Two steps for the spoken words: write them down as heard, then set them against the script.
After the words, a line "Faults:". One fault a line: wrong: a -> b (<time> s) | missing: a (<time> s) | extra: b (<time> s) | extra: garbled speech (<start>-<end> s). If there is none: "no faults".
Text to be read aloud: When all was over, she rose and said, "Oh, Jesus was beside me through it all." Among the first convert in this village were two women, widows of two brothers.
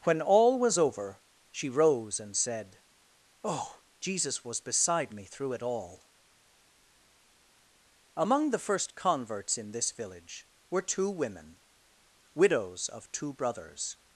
When all was over, she rose and said, "Oh, Jesus was beside me through it all." Among the first converts in this village were two women, widows of two brothers.
Faults:
wrong: convert -> converts (8.9 s)